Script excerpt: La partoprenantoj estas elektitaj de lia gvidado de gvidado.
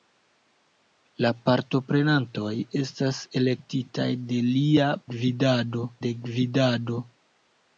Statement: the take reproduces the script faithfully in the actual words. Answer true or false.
true